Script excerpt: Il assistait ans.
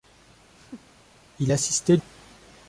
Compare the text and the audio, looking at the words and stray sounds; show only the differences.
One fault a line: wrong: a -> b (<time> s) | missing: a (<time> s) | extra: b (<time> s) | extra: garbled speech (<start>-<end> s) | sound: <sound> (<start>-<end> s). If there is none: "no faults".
sound: laugh (0.5-1.0 s)